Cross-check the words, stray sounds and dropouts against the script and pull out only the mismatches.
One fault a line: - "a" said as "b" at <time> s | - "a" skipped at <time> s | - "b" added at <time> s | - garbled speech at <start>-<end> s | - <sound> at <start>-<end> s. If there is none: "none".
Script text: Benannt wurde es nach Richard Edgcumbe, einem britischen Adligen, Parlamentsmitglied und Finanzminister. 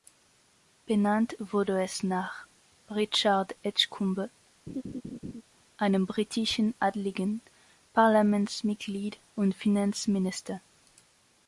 - laugh at 4.7-5.4 s